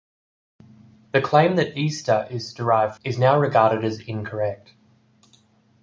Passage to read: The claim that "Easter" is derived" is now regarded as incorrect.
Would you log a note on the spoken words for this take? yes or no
no